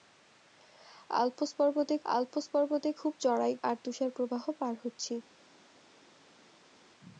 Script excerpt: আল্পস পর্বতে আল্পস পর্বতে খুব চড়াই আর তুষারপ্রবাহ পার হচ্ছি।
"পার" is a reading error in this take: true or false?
false